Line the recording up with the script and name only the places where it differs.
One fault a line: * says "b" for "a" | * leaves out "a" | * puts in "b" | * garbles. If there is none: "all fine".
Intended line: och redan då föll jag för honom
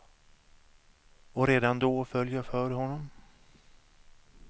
all fine